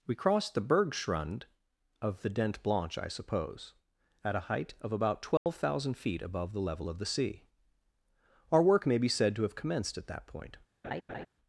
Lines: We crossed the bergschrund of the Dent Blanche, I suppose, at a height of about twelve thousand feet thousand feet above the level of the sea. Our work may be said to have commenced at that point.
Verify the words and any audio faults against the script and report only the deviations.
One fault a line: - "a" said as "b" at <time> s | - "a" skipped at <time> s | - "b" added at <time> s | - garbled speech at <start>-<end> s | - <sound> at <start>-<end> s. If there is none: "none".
- dropout at 5.4-5.5 s
- "thousand feet" skipped at 6.2 s
- laugh at 10.8-11.3 s